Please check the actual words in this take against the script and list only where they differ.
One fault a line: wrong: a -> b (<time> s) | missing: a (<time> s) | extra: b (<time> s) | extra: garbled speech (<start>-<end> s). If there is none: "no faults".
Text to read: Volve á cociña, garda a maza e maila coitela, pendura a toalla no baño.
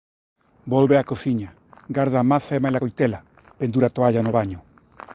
no faults